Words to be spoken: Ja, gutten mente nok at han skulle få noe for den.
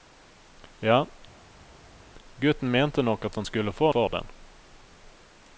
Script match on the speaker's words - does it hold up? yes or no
no